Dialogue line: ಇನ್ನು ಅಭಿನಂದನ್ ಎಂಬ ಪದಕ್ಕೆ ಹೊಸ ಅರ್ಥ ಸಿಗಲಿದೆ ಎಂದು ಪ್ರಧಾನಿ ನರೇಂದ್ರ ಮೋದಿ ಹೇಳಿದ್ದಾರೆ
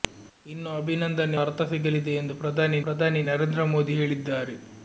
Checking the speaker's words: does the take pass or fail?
fail